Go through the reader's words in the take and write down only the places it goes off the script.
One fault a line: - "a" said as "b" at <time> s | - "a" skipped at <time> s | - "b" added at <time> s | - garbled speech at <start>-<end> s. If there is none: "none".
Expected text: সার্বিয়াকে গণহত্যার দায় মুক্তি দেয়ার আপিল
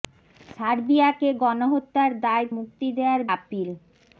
none